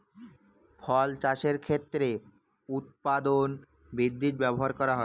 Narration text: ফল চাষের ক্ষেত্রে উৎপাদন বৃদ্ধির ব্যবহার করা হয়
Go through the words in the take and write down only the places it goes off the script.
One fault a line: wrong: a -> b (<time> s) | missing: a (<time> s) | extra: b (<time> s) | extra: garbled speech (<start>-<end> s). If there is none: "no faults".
no faults